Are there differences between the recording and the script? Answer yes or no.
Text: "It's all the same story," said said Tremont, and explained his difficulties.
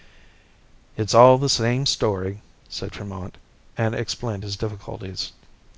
yes